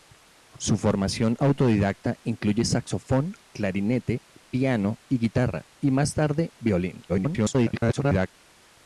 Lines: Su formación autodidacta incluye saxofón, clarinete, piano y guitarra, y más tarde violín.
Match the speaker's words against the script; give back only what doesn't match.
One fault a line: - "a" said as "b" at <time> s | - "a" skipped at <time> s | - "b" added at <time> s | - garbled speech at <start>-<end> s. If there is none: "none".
- garbled speech at 7.1-8.3 s